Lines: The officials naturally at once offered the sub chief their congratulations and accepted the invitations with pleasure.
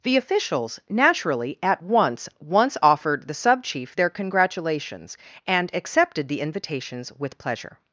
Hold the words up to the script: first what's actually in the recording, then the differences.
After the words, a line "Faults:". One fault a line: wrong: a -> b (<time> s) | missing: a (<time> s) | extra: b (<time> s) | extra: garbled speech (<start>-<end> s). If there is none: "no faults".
The officials naturally at once once offered the sub chief their congratulations and accepted the invitations with pleasure.
Faults:
extra: once (2.4 s)